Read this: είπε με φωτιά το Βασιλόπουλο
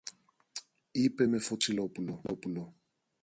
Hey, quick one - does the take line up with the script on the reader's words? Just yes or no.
yes